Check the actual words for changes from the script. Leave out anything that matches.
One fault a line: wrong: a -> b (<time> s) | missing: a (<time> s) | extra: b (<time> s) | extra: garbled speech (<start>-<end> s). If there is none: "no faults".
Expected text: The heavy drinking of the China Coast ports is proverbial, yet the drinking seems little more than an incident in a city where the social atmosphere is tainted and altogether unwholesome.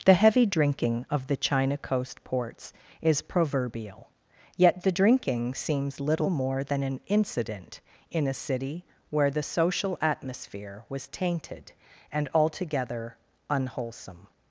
wrong: is -> was (10.9 s)